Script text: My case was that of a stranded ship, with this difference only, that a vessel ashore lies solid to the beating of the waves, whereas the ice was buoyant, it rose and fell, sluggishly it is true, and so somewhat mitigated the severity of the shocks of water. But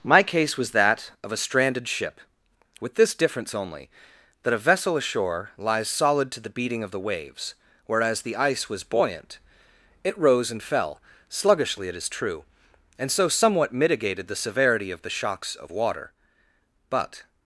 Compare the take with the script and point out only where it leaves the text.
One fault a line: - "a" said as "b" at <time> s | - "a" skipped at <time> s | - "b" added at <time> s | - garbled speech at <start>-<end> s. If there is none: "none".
none